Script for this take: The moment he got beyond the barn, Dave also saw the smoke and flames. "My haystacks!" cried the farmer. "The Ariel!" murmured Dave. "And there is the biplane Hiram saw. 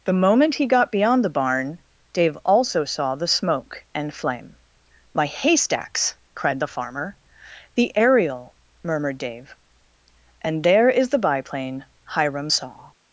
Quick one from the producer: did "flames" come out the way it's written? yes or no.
no